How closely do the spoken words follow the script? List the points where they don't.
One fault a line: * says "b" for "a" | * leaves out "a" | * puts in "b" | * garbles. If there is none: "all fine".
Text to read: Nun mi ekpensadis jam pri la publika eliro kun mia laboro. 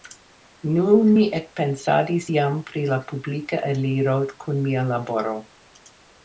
all fine